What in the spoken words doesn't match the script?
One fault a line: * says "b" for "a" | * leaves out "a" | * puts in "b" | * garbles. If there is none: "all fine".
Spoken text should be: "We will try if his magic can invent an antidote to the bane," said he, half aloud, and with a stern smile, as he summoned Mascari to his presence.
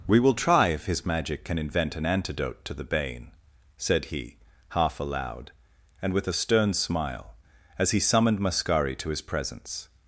all fine